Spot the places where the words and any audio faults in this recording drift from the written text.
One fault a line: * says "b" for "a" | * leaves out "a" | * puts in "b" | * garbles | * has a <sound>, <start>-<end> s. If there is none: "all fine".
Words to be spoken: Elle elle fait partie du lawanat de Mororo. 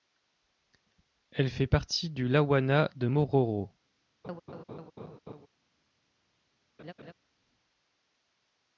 * leaves out "elle"
* has a laugh, 4.2-5.5 s
* has a laugh, 6.8-7.1 s